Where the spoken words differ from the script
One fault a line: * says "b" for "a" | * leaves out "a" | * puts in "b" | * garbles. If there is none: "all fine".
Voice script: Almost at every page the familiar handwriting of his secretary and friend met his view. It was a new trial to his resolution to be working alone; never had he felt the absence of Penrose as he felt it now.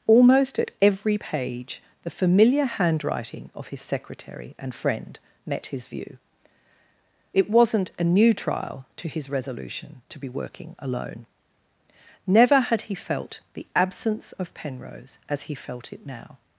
* says "wasn't" for "was"